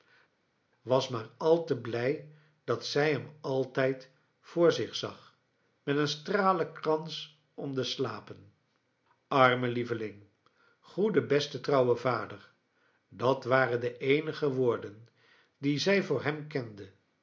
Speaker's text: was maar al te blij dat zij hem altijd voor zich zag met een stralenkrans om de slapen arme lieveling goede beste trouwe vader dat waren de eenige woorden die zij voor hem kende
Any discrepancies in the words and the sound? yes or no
no